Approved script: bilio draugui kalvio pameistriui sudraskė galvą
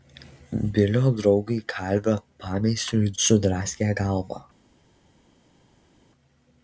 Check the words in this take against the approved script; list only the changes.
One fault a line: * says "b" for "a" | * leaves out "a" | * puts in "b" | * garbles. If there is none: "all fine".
all fine